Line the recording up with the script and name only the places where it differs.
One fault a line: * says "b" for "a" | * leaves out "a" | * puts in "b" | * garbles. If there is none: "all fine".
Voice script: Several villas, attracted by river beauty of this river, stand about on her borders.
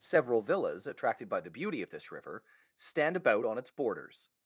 * says "the" for "river"
* says "its" for "her"